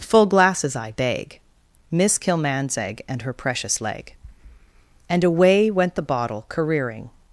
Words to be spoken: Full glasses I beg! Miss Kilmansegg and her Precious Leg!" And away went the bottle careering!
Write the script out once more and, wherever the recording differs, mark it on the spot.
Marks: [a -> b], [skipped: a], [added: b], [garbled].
Full glasses I beg! Miss Kilmansegg and her Precious Leg!" And away went the bottle careering!